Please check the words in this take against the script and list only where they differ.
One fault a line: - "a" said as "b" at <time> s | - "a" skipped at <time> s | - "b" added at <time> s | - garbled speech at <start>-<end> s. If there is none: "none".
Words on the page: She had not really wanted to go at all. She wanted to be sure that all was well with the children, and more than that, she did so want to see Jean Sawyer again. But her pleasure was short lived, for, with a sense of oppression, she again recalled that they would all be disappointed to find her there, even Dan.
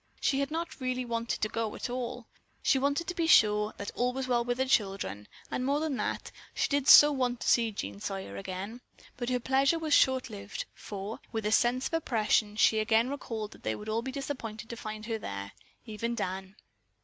none